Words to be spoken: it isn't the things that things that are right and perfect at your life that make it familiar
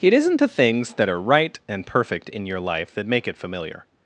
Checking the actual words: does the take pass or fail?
fail